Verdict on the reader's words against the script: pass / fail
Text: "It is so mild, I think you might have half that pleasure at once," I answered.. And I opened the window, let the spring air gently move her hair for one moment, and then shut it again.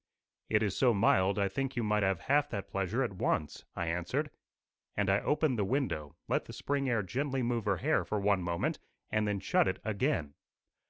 pass